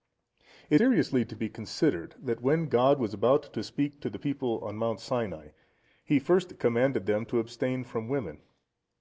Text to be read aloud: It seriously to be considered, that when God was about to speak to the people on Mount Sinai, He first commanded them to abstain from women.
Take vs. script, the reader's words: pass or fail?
pass